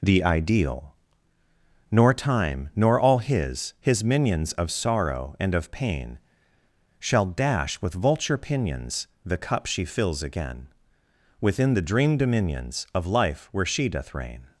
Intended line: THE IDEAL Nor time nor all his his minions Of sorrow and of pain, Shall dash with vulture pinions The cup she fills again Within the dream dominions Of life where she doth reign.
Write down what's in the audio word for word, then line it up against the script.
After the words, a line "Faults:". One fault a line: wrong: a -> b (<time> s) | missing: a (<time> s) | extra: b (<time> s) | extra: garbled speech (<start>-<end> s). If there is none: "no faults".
THE IDEAL Nor time nor all his his minions Of sorrow and of pain, Shall dash with vulture pinions The cup she fills again Within the dream dominions Of life where she doth reign.
Faults:
no faults